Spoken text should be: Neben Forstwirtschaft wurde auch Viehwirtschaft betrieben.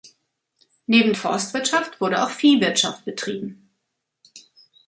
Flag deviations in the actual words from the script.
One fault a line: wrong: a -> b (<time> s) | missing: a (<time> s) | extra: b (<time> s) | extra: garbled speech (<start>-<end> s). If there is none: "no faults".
no faults